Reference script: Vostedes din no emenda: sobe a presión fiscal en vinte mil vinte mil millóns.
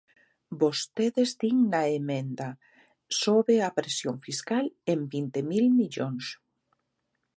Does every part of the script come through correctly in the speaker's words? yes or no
no